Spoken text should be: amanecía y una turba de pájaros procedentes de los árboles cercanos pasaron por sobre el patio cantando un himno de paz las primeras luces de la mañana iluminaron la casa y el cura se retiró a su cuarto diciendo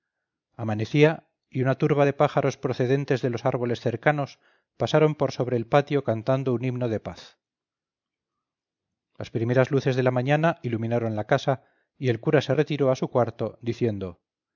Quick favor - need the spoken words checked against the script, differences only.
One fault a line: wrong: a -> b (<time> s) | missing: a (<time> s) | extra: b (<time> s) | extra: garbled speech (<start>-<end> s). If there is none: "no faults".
no faults